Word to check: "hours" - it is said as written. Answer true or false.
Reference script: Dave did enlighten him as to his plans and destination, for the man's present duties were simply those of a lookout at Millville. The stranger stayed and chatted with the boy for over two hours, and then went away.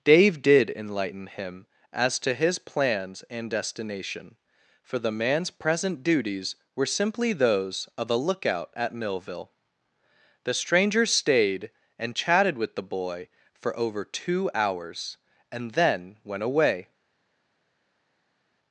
true